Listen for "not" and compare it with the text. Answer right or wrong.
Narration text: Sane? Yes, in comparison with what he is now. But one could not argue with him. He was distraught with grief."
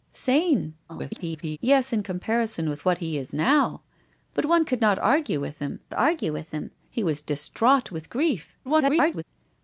right